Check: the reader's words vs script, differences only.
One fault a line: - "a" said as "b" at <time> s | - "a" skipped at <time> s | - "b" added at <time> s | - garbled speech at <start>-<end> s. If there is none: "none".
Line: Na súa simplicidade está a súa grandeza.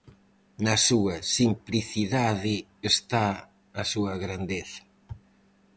none